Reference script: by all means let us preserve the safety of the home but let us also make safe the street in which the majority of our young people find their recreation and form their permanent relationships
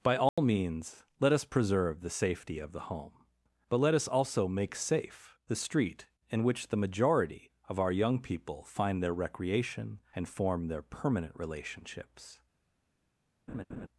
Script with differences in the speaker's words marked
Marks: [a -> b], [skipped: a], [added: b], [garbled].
by all means let us preserve the safety of the home but let us also make safe the street in which the majority of our young people find their recreation and form their permanent relationships